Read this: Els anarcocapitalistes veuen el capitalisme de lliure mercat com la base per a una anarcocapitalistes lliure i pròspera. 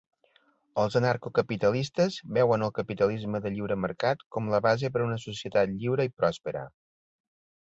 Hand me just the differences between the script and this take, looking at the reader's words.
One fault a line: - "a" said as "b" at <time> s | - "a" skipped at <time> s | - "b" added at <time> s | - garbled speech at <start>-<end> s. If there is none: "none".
- "anarcocapitalistes" said as "societat" at 5.3 s